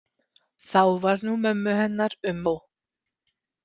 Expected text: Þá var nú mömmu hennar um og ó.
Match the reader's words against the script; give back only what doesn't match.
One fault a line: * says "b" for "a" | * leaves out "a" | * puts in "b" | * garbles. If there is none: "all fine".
* leaves out "og"